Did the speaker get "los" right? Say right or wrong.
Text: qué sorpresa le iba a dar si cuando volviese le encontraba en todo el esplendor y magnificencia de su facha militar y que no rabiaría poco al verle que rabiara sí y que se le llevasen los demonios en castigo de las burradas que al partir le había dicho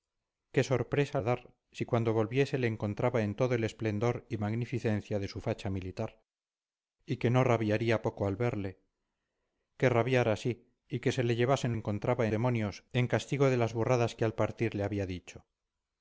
wrong